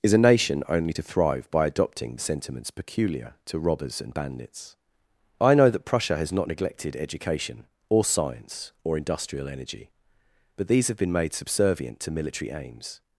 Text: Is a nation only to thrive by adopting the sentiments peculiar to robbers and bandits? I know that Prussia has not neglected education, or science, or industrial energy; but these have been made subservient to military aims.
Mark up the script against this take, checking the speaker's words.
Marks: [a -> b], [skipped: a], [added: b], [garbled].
Is a nation only to thrive by adopting the sentiments peculiar to robbers and bandits? I know that Prussia has not neglected education, or science, or industrial energy; but these have been made subservient to military aims.